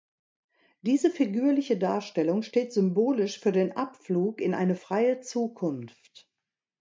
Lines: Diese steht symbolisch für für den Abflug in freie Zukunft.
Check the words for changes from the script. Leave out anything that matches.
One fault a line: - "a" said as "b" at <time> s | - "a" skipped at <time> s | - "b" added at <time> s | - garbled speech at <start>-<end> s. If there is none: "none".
- "figürliche Darstellung" added at 1.1 s
- "für" skipped at 3.5 s
- "eine" added at 4.5 s